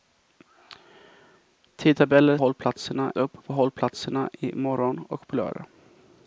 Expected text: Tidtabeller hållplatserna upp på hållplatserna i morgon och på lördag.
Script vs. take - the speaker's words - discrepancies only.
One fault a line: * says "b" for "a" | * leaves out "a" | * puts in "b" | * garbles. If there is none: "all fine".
all fine